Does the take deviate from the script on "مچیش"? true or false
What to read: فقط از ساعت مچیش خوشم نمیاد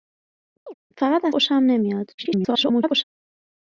true